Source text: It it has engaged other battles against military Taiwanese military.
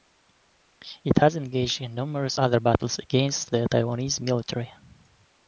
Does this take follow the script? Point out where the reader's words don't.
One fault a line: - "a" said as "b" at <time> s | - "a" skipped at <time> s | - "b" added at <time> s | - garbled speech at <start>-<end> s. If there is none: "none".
- "it" skipped at 1.2 s
- "in numerous" added at 1.8 s
- "military" said as "the" at 3.5 s